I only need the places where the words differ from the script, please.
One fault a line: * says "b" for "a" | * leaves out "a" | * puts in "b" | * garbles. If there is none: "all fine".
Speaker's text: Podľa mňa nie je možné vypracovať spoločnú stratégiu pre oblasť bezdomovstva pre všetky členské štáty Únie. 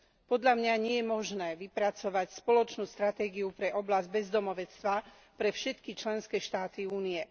all fine